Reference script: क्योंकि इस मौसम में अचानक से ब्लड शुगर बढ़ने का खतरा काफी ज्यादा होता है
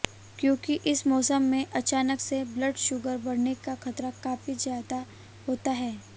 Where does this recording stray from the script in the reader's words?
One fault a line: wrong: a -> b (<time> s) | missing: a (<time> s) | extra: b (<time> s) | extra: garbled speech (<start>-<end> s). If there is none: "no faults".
no faults